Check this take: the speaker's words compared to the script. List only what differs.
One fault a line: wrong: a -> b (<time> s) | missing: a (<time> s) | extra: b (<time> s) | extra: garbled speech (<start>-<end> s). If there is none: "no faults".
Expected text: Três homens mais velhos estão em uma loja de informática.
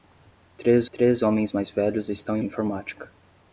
extra: três (0.9 s)
missing: uma loja de (2.4 s)